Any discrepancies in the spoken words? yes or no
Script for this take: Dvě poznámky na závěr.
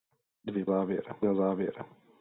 yes